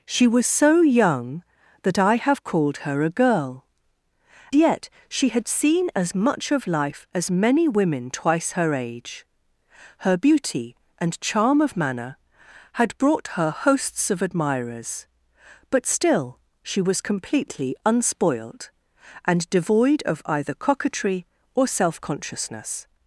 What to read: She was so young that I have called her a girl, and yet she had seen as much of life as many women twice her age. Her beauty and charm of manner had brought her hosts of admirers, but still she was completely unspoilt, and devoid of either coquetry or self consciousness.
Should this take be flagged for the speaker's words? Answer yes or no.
yes